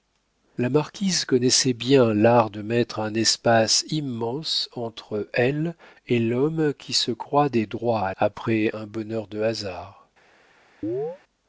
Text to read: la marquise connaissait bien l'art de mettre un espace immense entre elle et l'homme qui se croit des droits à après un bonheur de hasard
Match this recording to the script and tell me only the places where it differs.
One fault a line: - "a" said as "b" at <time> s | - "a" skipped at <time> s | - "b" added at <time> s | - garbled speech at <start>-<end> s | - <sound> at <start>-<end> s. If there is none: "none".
- chirp at 10.8-11.2 s